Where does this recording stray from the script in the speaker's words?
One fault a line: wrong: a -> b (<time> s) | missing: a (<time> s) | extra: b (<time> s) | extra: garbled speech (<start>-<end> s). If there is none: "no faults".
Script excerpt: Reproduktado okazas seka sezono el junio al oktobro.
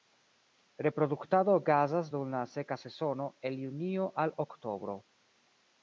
extra: dum la (2.1 s)